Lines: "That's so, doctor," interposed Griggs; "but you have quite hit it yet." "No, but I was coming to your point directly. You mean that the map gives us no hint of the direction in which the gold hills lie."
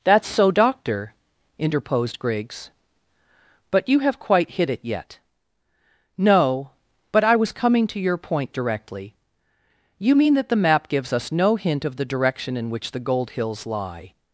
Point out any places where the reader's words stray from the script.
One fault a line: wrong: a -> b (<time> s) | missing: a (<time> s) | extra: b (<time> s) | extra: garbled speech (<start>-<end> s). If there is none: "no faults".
no faults